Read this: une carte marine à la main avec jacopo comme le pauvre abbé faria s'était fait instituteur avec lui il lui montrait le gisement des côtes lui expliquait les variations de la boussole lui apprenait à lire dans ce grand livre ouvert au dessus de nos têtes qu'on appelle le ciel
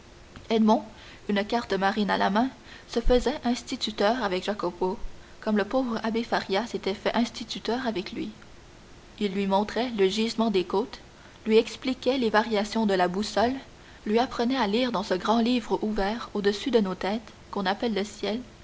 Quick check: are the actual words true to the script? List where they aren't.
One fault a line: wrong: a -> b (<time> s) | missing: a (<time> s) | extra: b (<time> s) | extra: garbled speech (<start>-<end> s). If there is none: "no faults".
extra: se faisait instituteur (2.9 s)